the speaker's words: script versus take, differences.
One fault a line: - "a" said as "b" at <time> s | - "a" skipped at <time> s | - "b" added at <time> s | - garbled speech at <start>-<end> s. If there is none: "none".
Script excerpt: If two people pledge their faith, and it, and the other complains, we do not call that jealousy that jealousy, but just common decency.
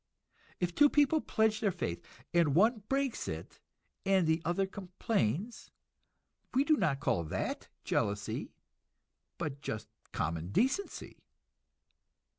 - "one breaks" added at 2.5 s
- "that jealousy" skipped at 8.5 s